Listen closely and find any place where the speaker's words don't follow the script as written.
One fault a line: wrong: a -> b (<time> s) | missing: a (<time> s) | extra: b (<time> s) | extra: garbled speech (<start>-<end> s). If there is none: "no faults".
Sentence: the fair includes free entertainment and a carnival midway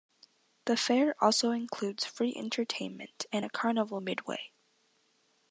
extra: also (1.2 s)